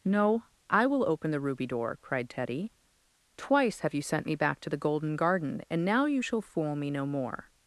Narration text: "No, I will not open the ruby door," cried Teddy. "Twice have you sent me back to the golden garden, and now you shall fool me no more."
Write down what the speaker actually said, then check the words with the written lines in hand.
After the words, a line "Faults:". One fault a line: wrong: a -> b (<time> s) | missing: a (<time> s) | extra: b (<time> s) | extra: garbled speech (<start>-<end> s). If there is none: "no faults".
"No, I will open the ruby door," cried Teddy. "Twice have you sent me back to the golden garden, and now you shall fool me no more."
Faults:
missing: not (1.1 s)